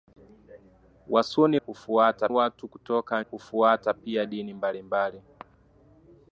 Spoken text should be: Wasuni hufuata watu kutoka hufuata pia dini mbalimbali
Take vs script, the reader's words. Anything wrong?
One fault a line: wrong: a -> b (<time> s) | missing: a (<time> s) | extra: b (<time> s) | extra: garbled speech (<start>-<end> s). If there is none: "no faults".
no faults